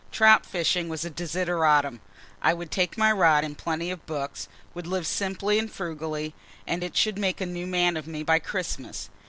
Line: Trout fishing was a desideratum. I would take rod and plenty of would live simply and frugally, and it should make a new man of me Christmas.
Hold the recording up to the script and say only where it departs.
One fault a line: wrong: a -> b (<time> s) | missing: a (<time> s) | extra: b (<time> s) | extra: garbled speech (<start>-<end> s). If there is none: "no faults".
extra: my (3.0 s)
extra: books (4.1 s)
extra: by (8.2 s)